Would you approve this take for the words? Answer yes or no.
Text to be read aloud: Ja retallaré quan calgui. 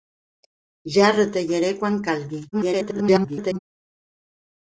no